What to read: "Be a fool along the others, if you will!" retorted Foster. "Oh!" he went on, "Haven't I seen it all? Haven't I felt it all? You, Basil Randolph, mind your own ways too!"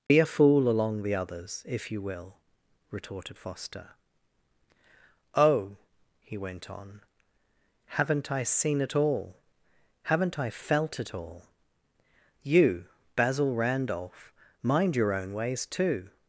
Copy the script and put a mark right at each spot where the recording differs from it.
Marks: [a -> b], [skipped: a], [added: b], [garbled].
"Be a fool along the others, if you will!" retorted Foster. "Oh!" he went on, "Haven't I seen it all? Haven't I felt it all? You, Basil Randolph, mind your own ways too!"